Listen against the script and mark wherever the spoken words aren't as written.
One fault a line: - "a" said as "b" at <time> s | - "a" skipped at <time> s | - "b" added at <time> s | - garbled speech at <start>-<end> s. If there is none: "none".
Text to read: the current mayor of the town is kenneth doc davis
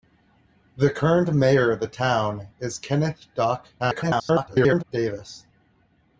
- garbled speech at 3.8-4.8 s